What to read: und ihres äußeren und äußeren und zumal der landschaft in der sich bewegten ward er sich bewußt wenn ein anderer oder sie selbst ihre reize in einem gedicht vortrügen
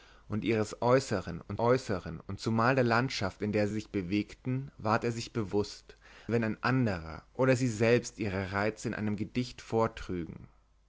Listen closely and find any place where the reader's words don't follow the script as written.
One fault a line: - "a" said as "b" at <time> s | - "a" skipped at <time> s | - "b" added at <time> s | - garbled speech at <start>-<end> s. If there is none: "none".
none